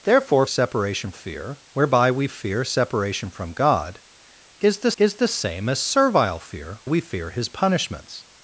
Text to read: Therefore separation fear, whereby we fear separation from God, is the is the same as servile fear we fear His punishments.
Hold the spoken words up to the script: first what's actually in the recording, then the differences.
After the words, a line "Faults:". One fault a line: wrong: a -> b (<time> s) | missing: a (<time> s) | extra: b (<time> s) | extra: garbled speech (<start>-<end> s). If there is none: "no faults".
Therefore separation fear, whereby we fear separation from God, is the is the same as servile fear we fear His punishments.
Faults:
no faults